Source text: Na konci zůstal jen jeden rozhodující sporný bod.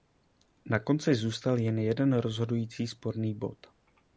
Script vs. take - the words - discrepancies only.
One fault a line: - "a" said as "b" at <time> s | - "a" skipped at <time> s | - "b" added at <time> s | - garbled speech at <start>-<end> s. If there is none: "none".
none